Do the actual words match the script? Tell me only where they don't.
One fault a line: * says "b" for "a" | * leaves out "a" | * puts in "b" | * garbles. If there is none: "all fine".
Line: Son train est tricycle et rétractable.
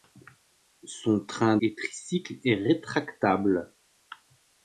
all fine